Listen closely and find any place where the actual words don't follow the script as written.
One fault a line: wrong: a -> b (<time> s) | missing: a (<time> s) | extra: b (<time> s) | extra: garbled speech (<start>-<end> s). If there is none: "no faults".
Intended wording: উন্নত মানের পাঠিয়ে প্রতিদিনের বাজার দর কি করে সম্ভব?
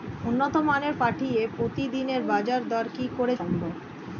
no faults